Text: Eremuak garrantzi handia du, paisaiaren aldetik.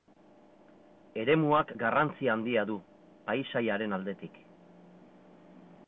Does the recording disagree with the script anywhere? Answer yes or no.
no